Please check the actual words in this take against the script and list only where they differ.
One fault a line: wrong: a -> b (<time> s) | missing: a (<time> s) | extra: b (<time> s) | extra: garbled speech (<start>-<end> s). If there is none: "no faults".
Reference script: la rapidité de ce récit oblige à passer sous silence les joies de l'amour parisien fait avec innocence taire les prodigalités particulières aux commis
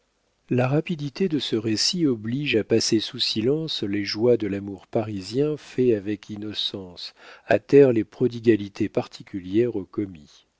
extra: à (7.5 s)